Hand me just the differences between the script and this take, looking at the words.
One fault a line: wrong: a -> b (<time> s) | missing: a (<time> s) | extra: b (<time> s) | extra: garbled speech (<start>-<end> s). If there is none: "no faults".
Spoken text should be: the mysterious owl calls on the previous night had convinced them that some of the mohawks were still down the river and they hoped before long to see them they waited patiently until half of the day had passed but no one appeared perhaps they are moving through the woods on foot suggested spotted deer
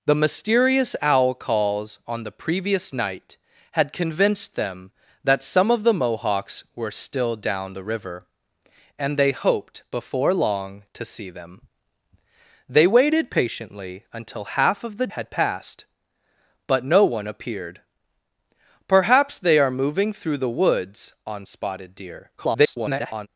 missing: day (15.1 s)
missing: foot suggested (21.4 s)
extra: garbled speech (22.4-23.3 s)